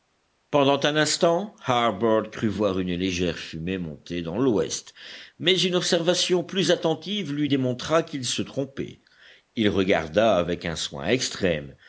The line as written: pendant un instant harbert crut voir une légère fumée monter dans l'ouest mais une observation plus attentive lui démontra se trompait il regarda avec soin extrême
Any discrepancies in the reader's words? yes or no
yes